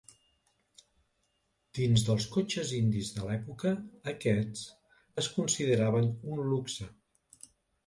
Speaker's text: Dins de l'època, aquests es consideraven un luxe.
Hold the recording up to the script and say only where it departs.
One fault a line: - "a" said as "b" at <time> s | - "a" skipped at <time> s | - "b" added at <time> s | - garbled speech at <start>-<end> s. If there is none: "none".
- "dels cotxes indis" added at 2.1 s